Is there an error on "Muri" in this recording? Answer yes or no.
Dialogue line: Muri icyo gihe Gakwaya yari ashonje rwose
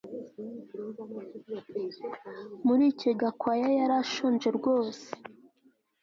no